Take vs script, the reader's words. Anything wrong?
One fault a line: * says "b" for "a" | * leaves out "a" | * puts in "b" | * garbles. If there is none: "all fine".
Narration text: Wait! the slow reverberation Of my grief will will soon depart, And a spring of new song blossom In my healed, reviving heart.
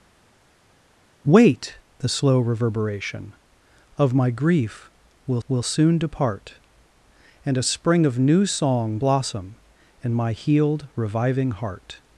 all fine